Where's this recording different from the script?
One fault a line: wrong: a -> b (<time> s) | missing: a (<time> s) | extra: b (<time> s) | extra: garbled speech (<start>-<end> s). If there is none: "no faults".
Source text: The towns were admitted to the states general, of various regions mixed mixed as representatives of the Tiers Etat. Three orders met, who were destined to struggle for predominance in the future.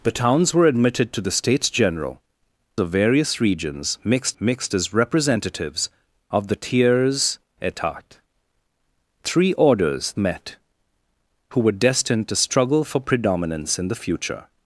no faults